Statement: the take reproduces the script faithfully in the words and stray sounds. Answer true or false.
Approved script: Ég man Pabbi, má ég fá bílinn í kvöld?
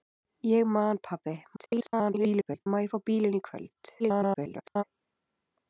false